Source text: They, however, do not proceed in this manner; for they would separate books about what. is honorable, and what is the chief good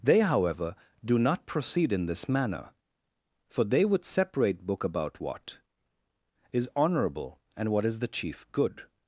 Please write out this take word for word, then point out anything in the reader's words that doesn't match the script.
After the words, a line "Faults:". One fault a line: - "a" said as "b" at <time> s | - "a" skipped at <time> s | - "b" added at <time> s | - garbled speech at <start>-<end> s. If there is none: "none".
They, however, do not proceed in this manner; for they would separate book about what. is honorable, and what is the chief good
Faults:
- "books" said as "book" at 4.7 s